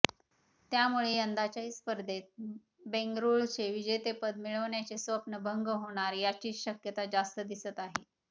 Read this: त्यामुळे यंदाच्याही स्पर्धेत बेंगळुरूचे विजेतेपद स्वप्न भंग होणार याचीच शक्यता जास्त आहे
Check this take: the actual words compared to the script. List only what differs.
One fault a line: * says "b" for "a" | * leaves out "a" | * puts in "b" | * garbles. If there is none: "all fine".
* puts in "मिळवण्याचे"
* puts in "दिसत"